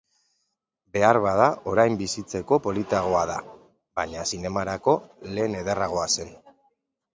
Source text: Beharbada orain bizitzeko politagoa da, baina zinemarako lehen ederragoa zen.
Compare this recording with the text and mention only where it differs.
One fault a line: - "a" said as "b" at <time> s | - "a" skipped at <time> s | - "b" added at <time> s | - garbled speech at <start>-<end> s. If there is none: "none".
none